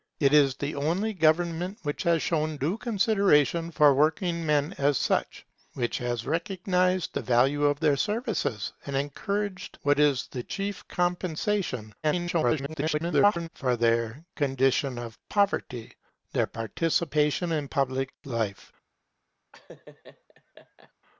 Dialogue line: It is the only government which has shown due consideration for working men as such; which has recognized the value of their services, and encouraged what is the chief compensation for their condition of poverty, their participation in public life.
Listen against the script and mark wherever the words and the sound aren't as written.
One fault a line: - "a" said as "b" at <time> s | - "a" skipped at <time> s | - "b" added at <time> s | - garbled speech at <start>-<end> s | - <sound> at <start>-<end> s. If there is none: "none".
- garbled speech at 12.0-13.5 s
- laugh at 19.5-20.9 s